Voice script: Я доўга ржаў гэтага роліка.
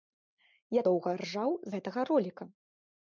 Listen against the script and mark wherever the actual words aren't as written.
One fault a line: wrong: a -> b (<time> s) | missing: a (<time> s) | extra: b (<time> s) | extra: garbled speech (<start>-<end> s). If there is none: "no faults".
no faults